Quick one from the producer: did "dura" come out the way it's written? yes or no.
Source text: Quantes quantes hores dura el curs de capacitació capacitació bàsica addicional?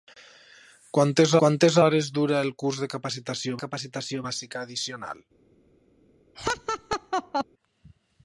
yes